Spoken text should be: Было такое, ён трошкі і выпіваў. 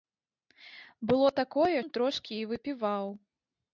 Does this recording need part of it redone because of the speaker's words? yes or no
no